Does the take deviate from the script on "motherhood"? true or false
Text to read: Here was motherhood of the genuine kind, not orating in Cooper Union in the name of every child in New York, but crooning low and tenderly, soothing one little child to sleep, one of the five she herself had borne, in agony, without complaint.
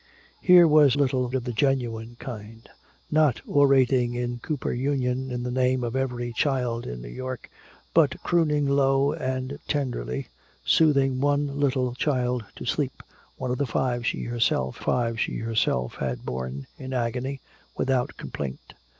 true